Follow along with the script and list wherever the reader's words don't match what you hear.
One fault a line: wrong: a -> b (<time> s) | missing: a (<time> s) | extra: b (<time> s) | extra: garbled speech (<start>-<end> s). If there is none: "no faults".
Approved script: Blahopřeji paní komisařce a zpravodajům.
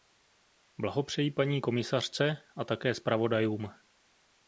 extra: také (2.6 s)